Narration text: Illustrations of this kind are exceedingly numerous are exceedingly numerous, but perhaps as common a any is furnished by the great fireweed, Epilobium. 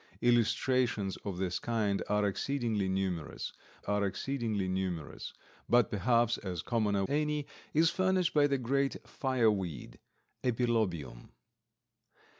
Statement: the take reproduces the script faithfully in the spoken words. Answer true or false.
true